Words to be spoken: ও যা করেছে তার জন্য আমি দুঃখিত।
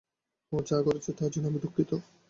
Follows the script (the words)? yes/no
yes